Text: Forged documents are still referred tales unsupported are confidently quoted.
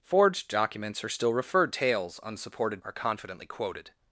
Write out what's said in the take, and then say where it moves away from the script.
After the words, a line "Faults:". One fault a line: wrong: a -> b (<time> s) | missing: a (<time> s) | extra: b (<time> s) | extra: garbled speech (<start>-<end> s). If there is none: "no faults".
Forged documents are still referred tales unsupported are confidently quoted.
Faults:
no faults